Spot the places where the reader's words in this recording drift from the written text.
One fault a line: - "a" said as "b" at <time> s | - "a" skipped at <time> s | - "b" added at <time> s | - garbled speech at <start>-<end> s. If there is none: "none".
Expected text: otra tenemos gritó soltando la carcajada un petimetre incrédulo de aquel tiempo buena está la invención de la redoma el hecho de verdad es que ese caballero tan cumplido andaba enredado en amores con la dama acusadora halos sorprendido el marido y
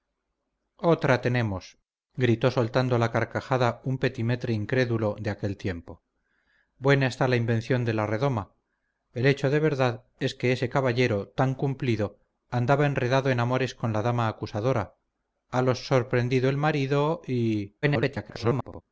- garbled speech at 17.8-18.8 s